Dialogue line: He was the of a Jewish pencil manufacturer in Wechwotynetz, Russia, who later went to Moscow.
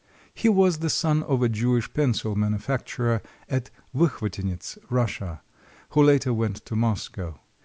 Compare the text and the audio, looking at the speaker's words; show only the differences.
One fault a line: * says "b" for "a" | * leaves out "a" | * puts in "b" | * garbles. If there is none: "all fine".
* puts in "son"
* says "at" for "in"